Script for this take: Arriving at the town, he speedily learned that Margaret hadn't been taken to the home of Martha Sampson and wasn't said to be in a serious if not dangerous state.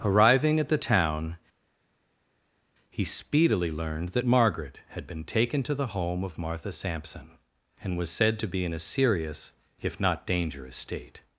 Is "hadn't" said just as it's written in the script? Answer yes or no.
no